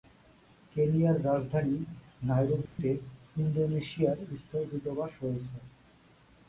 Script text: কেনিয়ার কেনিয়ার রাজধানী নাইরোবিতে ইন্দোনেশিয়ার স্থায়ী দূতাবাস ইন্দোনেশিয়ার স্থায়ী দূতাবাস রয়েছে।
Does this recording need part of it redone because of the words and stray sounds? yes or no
yes